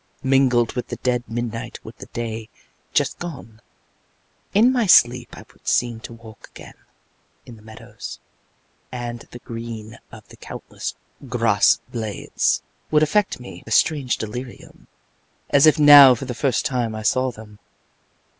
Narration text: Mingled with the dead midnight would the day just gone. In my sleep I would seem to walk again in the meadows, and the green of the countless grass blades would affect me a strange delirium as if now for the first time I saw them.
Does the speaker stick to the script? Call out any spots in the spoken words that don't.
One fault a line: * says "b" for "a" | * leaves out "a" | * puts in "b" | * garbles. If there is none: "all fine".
all fine